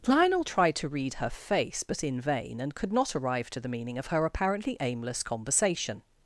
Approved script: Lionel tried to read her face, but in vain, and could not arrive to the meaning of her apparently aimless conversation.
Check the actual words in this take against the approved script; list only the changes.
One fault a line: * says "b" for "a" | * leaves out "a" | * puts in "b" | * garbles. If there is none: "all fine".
all fine